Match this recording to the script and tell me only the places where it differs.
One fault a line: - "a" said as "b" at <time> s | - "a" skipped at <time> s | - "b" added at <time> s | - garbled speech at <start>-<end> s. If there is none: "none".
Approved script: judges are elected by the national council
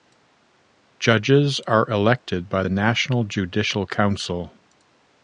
- "judicial" added at 3.2 s